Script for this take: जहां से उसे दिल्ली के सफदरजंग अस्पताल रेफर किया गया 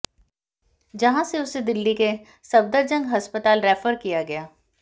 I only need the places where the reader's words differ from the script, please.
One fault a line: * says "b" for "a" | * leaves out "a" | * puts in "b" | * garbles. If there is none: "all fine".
all fine